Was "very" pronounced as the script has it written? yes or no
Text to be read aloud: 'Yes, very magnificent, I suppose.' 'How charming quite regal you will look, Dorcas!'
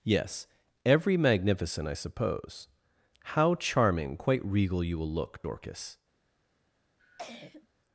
no